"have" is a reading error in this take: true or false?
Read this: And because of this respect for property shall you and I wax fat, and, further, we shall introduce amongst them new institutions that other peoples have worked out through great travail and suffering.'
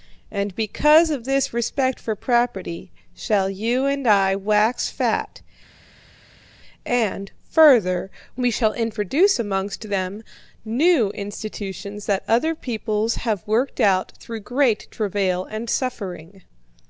false